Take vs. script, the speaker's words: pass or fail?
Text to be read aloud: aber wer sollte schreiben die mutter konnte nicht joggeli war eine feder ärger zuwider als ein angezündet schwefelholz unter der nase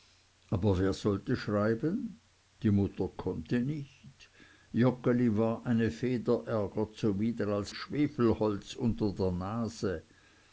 fail